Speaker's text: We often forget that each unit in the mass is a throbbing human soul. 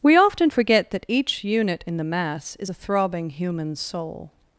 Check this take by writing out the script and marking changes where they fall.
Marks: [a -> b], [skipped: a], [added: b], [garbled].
We often forget that each unit in the mass is a throbbing human soul.